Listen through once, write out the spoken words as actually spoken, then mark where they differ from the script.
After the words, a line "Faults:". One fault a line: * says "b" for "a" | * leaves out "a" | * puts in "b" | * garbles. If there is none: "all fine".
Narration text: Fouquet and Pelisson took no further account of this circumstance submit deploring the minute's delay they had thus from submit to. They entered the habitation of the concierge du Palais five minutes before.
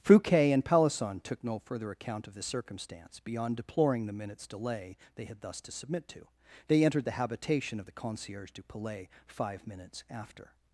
Fouquet and Pelisson took no further account of this circumstance beyond deploring the minute's delay they had thus to submit to. They entered the habitation of the concierge du Palais five minutes after.
Faults:
* says "beyond" for "submit"
* says "to" for "from"
* says "after" for "before"